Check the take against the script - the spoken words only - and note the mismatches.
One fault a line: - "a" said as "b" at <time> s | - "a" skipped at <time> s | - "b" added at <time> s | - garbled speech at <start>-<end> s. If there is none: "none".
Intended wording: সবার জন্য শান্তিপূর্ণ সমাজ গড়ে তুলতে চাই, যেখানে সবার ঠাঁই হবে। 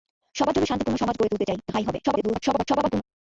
- "যেখানে সবার" skipped at 1.6 s
- garbled speech at 2.0-3.0 s